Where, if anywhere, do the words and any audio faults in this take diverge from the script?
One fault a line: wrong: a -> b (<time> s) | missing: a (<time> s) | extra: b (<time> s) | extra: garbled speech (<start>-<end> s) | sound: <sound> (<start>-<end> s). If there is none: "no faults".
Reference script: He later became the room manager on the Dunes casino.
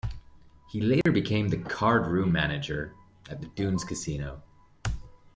sound: dropout (1.0-1.1 s)
extra: card (1.6 s)
wrong: on -> at (3.3 s)